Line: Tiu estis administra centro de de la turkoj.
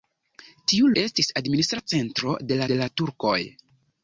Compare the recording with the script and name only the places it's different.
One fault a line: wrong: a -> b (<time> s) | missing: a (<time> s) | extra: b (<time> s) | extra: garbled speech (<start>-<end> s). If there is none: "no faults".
no faults